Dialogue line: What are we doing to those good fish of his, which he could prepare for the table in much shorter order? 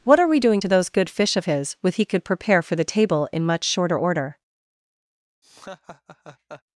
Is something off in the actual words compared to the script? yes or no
yes